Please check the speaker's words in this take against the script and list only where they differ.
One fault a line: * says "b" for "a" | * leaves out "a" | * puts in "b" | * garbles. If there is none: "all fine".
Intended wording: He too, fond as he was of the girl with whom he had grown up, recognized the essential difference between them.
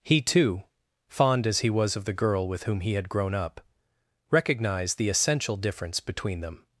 all fine